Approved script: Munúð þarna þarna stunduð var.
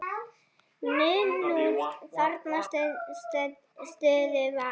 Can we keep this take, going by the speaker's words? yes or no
no